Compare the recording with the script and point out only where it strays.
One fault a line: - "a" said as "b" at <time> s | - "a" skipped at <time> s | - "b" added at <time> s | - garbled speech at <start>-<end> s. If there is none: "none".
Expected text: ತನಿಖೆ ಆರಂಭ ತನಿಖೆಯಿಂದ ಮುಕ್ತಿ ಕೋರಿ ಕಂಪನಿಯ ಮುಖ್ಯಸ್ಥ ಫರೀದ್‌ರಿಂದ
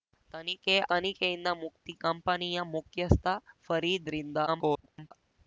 - "ಆರಂಭ" skipped at 0.8 s
- "ಕೋರಿ" skipped at 1.9 s
- garbled speech at 4.5-5.1 s